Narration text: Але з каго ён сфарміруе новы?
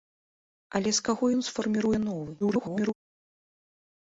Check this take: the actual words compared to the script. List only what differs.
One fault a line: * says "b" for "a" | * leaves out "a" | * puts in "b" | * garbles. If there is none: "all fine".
* garbles